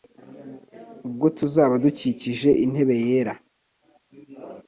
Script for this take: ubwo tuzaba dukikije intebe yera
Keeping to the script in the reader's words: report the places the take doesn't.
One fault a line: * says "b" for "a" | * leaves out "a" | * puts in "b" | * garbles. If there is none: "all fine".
all fine